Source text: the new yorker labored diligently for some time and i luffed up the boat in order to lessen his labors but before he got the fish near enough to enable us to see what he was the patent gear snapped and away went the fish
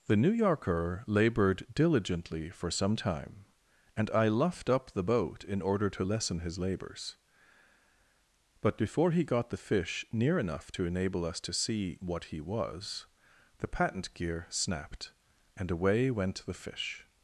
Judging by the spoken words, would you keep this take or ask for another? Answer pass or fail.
pass